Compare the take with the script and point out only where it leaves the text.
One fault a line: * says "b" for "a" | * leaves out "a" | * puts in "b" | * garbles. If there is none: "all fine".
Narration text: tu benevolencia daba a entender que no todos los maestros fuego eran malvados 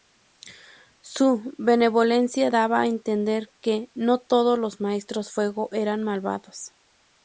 * says "su" for "tu"